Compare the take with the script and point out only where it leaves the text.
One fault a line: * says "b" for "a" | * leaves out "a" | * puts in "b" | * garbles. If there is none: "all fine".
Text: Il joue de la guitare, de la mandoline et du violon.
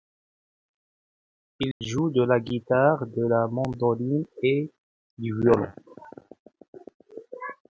all fine